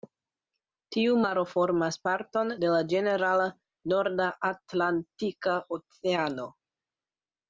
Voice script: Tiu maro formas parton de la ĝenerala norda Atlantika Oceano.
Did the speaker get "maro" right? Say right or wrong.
right